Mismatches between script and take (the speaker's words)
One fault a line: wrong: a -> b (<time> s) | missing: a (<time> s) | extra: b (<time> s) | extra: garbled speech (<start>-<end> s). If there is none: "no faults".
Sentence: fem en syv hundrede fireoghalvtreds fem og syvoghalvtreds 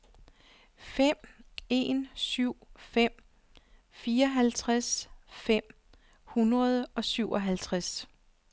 wrong: hundrede -> fem (2.8 s)
extra: hundrede (6.2 s)